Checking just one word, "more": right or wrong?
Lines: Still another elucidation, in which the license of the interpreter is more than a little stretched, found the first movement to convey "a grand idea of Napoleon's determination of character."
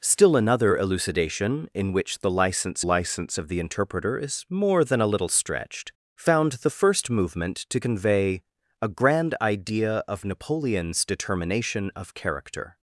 right